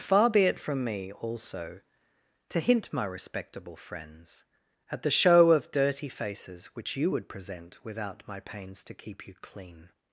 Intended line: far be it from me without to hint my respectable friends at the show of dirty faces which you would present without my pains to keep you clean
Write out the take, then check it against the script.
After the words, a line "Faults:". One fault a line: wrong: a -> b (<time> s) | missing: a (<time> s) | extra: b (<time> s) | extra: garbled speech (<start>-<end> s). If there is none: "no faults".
far be it from me also to hint my respectable friends at the show of dirty faces which you would present without my pains to keep you clean
Faults:
wrong: without -> also (1.1 s)